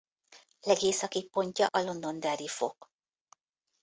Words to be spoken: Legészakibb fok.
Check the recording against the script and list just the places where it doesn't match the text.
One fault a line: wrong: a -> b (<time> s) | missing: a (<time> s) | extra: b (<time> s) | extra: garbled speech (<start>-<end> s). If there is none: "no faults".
extra: pontja a Londonderry (1.3 s)